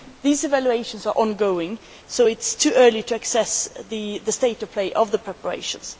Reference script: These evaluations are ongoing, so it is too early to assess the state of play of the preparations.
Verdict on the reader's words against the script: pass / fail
pass